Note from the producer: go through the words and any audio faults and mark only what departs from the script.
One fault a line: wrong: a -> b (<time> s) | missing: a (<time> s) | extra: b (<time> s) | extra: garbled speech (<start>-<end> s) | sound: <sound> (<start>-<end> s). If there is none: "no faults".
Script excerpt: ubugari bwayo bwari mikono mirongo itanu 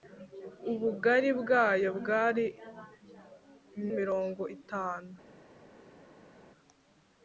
missing: mikono (2.5 s)